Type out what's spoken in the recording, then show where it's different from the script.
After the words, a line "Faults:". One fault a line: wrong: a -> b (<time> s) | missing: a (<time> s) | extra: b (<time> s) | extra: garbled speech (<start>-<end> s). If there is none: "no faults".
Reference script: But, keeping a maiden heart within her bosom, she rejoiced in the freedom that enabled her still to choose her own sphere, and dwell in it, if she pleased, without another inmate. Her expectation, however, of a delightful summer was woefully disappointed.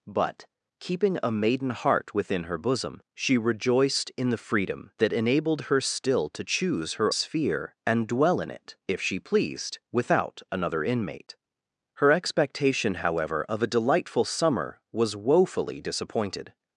But, keeping a maiden heart within her bosom, she rejoiced in the freedom that enabled her still to choose her sphere, and dwell in it, if she pleased, without another inmate. Her expectation, however, of a delightful summer was woefully disappointed.
Faults:
missing: own (7.1 s)